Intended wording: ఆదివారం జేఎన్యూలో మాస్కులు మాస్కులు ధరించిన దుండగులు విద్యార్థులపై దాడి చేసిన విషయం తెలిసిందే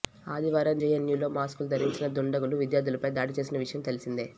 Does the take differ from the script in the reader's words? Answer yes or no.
yes